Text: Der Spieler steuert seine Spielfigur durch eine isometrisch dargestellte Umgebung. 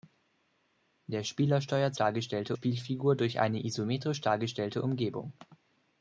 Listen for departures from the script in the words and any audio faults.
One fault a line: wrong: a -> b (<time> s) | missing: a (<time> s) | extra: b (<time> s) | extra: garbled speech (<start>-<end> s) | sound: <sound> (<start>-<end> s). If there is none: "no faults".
wrong: seine -> dargestellte (2.0 s)